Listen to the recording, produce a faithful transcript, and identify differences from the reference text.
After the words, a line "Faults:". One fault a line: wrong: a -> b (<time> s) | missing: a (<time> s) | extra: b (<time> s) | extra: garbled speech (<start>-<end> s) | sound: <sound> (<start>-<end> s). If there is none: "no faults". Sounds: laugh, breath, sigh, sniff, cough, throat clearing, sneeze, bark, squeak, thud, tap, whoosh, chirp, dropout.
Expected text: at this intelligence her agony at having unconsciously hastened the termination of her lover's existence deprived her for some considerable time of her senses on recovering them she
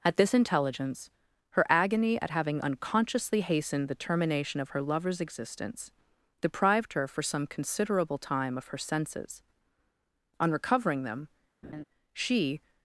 at this intelligence her agony at having unconsciously hastened the termination of her lover's existence deprived her for some considerable time of her senses on recovering them she
Faults:
sound: laugh (11.6-11.8 s)